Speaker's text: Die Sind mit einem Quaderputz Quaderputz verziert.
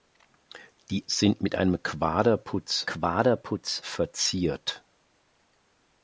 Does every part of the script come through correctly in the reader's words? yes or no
yes